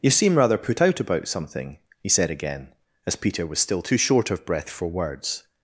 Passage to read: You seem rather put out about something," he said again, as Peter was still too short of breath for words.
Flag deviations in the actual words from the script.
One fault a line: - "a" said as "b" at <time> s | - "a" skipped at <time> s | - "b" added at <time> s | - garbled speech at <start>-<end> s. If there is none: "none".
none